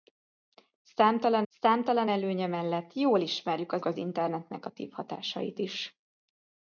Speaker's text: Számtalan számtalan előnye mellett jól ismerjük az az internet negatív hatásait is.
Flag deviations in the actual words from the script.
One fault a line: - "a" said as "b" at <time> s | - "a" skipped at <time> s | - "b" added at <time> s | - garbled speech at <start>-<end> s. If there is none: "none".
none